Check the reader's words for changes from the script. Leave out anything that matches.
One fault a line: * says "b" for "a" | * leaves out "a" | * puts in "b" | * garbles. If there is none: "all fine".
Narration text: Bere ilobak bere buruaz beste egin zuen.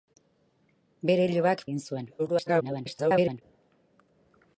* leaves out "bere buruaz beste"
* garbles